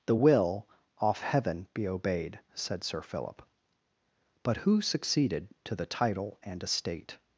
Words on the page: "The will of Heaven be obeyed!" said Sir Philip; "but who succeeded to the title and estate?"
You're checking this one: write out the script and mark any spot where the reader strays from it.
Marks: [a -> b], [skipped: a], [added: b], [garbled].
"The will [of -> off] Heaven be obeyed!" said Sir Philip; "but who succeeded to the title and estate?"